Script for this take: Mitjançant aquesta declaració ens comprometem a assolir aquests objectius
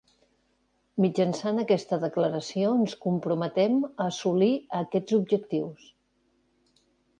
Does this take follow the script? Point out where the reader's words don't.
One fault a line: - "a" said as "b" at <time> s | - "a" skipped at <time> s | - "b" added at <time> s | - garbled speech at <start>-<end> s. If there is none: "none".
none